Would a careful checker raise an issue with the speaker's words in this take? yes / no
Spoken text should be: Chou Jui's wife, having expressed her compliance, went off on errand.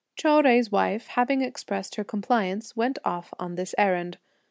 yes